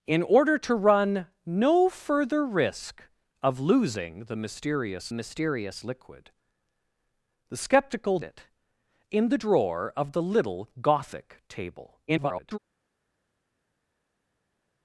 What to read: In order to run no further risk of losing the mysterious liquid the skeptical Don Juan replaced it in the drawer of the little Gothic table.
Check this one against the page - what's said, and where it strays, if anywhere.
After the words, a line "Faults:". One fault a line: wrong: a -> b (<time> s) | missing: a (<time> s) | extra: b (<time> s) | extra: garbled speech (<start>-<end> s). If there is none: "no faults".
In order to run no further risk of losing the mysterious mysterious liquid the skeptical It in the drawer of the little Gothic table. [garbled]
Faults:
extra: mysterious (5.1 s)
missing: Don Juan replaced (8.2 s)
extra: garbled speech (12.1-12.6 s)